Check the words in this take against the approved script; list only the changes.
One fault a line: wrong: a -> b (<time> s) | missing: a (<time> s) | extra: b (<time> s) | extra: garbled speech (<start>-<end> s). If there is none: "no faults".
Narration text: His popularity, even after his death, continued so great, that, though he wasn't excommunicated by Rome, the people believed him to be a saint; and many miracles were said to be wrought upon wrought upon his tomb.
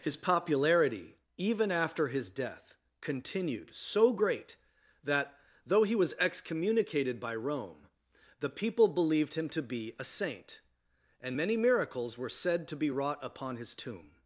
wrong: wasn't -> was (6.0 s)
missing: wrought upon (13.6 s)